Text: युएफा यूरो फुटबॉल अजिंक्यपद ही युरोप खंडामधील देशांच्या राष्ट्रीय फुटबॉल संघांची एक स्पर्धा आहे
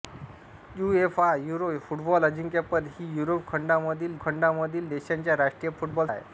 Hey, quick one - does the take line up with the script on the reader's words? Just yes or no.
no